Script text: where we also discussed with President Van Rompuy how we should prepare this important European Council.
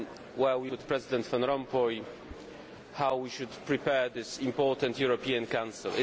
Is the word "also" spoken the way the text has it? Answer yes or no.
no